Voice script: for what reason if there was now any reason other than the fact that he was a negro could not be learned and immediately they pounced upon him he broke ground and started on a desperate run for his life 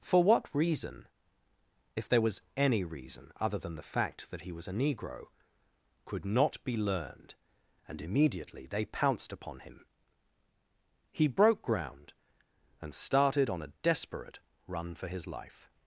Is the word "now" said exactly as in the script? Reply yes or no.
no